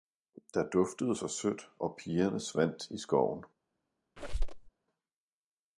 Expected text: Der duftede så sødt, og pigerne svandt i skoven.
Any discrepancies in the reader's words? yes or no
no